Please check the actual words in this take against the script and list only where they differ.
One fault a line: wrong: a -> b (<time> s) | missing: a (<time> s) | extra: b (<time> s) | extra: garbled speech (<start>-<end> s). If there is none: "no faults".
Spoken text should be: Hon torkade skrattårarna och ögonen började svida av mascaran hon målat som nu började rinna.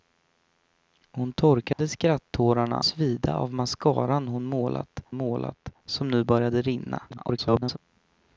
missing: och ögonen började (2.8 s)
extra: målat (5.1 s)
extra: garbled speech (7.1-7.8 s)